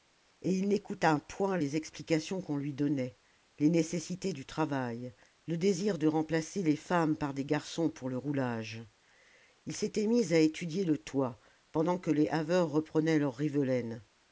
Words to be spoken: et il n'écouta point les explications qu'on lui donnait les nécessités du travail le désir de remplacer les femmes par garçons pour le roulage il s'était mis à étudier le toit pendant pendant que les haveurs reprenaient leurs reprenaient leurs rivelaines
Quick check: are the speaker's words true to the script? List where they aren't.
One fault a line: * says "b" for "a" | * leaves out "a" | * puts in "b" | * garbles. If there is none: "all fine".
* puts in "des"
* leaves out "pendant"
* leaves out "reprenaient leurs"